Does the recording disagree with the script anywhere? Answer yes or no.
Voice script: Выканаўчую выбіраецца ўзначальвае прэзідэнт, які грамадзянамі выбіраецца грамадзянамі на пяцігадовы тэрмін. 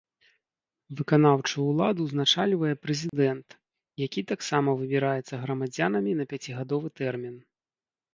yes